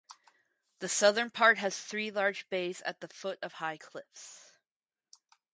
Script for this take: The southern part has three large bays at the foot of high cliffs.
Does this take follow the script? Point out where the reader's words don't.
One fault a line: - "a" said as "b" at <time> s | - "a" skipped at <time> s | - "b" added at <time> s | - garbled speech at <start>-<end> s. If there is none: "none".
none